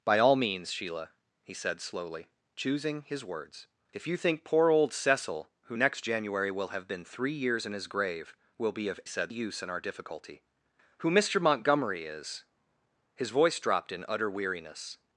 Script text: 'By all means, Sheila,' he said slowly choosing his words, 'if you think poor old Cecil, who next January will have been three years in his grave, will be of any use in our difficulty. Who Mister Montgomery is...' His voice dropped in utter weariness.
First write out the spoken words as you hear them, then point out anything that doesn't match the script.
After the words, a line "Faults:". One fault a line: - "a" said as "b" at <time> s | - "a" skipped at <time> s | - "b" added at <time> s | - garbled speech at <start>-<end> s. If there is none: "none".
'By all means, Sheila,' he said slowly choosing his words, 'if you think poor old Cecil, who next January will have been three years in his grave, will be of said use in our difficulty. Who Mister Montgomery is...' His voice dropped in utter weariness.
Faults:
- "any" said as "said" at 9.1 s